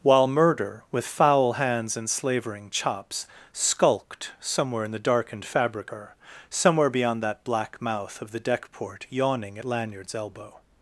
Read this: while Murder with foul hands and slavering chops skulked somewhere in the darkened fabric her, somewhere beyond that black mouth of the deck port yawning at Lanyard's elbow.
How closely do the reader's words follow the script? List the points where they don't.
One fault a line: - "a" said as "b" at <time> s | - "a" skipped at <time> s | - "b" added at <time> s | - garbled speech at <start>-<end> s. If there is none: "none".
none